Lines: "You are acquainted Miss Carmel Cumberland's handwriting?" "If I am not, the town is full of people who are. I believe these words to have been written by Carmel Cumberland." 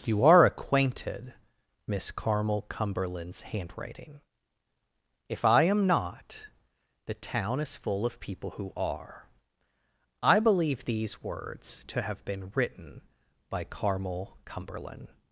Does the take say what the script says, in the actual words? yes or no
yes